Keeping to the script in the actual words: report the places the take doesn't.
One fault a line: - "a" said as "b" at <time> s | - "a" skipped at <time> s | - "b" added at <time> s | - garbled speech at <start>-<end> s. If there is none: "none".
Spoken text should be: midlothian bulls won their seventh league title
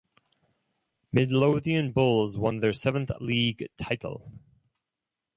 none